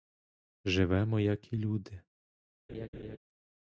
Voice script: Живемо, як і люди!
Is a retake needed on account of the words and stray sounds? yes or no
yes